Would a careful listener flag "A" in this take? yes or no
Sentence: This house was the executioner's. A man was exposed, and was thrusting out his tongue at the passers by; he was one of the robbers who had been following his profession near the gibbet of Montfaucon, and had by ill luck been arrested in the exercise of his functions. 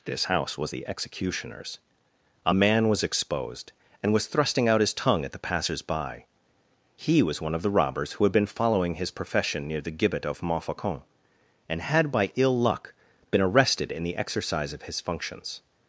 no